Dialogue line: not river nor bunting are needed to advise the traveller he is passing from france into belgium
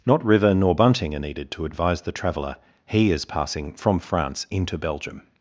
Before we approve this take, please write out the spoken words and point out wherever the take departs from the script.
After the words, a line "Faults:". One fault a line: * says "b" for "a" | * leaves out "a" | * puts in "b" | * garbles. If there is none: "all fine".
not river nor bunting are needed to advise the traveller he is passing from france into belgium
Faults:
all fine